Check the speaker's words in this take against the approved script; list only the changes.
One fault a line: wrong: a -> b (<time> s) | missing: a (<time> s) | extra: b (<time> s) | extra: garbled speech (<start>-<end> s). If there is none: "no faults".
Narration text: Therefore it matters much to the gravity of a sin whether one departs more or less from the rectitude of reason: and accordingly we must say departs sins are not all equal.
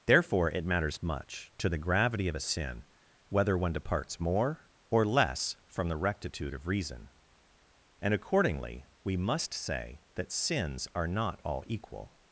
wrong: departs -> that (10.1 s)